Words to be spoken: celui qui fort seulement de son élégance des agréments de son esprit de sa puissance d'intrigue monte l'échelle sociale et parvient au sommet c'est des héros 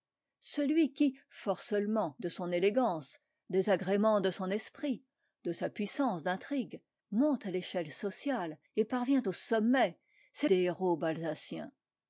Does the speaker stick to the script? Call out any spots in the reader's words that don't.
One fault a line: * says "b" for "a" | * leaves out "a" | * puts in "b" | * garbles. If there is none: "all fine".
all fine